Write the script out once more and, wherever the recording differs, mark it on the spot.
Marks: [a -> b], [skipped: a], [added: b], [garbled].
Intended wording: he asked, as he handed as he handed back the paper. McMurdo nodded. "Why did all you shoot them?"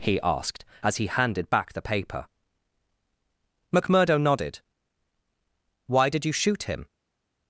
he asked, as he handed [skipped: as he handed] back the paper. McMurdo nodded. "Why did [skipped: all] you shoot [them?" -> him]